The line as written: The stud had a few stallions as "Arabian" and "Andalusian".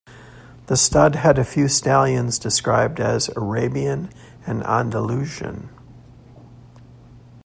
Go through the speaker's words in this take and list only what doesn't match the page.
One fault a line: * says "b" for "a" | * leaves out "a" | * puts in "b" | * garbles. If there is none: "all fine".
* puts in "described"